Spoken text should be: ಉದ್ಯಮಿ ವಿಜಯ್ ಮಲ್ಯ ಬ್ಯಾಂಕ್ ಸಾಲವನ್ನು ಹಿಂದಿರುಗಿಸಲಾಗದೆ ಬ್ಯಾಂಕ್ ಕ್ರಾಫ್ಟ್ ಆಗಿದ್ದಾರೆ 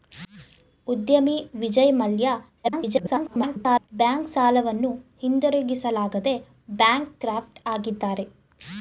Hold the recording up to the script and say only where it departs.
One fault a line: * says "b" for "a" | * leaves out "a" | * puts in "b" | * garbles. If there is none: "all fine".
* garbles